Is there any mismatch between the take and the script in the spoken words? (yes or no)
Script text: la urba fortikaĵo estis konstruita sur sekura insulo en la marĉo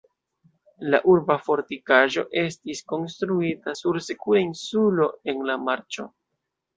no